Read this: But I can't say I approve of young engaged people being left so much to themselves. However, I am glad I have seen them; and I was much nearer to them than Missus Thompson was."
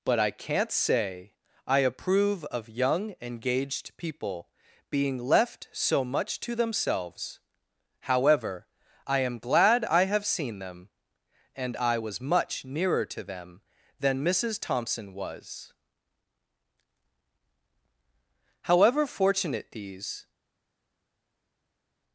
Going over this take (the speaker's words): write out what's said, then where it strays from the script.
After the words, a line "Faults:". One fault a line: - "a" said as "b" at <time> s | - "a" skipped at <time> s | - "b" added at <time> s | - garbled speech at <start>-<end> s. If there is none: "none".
But I can't say I approve of young engaged people being left so much to themselves. However, I am glad I have seen them; and I was much nearer to them than Missus Thompson was." However fortunate these
Faults:
- "However fortunate these" added at 18.6 s